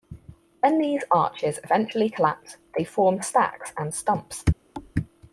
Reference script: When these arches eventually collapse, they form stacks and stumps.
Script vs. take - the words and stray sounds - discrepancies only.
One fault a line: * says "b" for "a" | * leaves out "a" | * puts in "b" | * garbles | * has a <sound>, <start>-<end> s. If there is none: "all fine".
* has a thud, 4.7-4.9 s